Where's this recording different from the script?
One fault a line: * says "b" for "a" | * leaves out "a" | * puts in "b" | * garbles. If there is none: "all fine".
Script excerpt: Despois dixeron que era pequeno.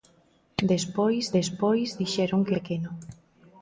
* puts in "despois"
* leaves out "era"